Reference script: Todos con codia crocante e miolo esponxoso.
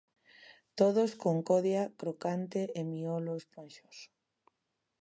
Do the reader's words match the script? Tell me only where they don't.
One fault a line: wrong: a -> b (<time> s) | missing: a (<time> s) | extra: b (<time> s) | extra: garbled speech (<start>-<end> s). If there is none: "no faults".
no faults